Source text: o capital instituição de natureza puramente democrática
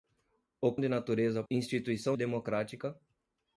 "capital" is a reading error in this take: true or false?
true